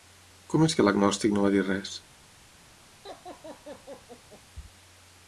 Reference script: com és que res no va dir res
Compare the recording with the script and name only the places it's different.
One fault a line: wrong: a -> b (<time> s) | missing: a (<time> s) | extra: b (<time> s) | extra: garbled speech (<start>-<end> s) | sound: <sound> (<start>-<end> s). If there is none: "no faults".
wrong: res -> l'agnòstic (0.9 s)
sound: laugh (3.0-4.4 s)